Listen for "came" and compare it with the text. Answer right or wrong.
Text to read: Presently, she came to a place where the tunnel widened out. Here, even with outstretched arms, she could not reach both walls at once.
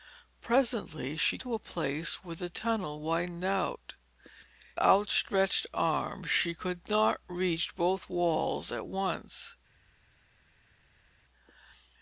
wrong